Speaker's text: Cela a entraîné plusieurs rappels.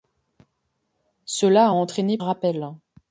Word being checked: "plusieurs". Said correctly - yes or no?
no